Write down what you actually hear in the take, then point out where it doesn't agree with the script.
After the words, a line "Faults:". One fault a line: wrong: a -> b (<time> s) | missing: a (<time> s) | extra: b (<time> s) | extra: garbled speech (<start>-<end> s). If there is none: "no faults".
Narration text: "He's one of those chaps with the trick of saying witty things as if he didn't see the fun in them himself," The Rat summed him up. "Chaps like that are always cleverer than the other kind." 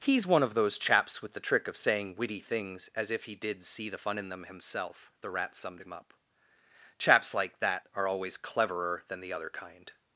"He's one of those chaps with the trick of saying witty things as if he did see the fun in them himself," The Rat summed him up. "Chaps like that are always cleverer than the other kind."
Faults:
wrong: didn't -> did (3.4 s)